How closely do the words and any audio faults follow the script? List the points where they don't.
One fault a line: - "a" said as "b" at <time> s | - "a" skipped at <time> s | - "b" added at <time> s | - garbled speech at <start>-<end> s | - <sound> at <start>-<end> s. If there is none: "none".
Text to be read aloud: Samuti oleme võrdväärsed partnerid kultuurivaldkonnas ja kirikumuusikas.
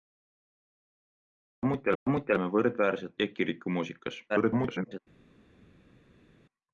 - "samuti" added at 2.0 s
- "partnerid kultuurivaldkonnas" skipped at 3.1 s
- garbled speech at 4.3-5.0 s